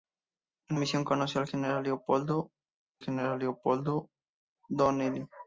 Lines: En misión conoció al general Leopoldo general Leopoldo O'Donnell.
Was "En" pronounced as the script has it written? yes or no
yes